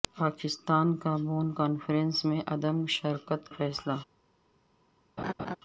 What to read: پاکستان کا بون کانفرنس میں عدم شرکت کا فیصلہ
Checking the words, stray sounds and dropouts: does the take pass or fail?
fail